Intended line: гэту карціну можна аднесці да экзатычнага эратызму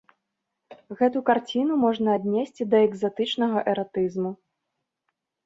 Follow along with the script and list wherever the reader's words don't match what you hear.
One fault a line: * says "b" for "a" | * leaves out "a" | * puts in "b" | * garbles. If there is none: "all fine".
all fine